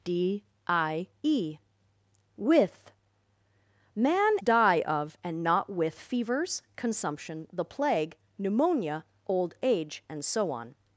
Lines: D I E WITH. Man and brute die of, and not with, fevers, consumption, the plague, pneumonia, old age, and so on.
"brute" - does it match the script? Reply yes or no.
no